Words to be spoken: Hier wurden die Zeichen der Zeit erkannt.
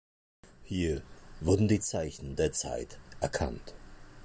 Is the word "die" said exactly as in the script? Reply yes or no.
yes